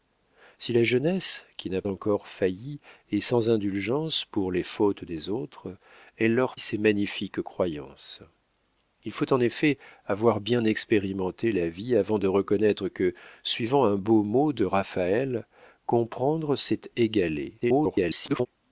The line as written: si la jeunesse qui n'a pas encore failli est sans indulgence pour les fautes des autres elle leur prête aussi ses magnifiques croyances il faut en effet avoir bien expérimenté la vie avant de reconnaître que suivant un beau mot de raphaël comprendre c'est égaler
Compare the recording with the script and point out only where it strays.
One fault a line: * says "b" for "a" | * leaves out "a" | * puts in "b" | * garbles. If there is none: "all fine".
* leaves out "pas"
* leaves out "prête aussi"
* garbles